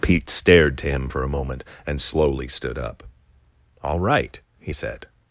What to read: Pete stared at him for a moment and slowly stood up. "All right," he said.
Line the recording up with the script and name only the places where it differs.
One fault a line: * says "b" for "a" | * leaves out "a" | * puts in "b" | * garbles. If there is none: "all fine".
* says "to" for "at"